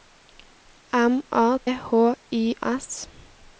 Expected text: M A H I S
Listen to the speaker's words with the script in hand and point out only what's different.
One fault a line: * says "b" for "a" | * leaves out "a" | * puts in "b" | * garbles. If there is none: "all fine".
all fine